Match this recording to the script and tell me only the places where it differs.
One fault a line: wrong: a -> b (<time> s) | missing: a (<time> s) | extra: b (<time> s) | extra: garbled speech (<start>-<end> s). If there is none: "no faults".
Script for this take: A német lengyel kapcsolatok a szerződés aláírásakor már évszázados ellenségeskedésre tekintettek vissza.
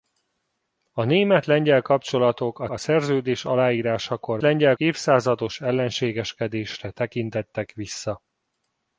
extra: a (2.7 s)
wrong: már -> lengyel (4.4 s)